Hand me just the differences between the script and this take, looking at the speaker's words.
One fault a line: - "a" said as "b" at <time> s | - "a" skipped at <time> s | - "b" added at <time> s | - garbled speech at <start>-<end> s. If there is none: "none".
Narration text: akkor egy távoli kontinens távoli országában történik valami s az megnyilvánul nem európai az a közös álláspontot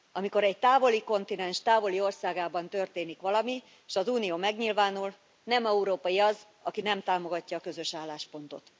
- "akkor" said as "amikor" at 0.1 s
- "unió" added at 4.1 s
- "aki nem támogatja" added at 6.6 s